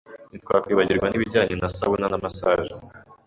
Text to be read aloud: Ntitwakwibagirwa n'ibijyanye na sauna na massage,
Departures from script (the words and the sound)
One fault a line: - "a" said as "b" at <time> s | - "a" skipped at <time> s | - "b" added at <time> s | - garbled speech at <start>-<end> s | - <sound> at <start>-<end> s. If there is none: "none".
none